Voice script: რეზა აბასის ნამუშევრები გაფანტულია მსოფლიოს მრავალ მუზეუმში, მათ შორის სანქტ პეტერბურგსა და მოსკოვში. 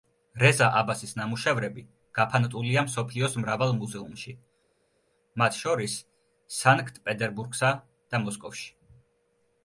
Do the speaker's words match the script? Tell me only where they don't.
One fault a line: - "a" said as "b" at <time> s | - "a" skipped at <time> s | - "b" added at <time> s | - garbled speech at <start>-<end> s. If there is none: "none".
none